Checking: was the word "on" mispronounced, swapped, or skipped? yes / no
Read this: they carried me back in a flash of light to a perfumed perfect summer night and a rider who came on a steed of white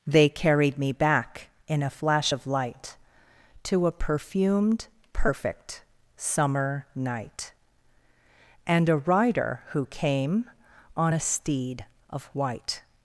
no